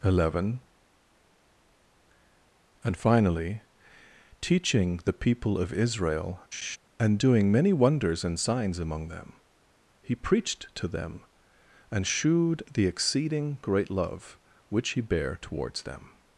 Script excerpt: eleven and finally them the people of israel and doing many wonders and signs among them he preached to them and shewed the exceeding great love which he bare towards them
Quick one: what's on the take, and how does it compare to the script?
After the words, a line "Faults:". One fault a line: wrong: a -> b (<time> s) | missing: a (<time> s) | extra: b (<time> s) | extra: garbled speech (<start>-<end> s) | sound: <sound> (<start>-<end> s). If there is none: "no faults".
eleven and finally teaching the people of israel and doing many wonders and signs among them he preached to them and shewed the exceeding great love which he bare towards them
Faults:
wrong: them -> teaching (4.4 s)
sound: laugh (6.5-6.8 s)